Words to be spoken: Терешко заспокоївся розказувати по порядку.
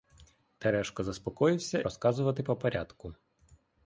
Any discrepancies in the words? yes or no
no